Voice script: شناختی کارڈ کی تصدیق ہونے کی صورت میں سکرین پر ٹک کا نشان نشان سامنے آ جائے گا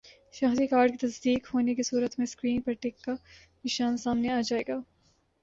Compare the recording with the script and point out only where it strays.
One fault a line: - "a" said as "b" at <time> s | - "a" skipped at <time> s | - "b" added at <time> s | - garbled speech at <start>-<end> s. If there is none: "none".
- "نشان" skipped at 4.0 s